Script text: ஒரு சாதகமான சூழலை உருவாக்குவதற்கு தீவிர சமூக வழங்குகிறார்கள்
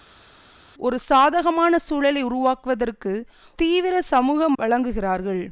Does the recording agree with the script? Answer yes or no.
yes